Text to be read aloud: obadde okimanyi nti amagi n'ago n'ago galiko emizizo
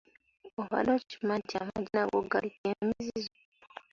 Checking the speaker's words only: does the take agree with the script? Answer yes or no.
no